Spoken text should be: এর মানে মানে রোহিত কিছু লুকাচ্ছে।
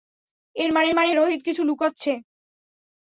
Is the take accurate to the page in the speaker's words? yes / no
yes